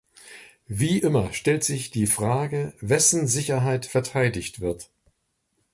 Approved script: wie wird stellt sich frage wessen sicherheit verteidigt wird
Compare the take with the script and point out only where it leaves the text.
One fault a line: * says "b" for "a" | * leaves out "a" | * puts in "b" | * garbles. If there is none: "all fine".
* says "immer" for "wird"
* puts in "die"